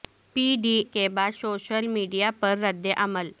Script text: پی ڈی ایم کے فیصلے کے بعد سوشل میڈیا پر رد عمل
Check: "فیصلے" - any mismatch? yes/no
yes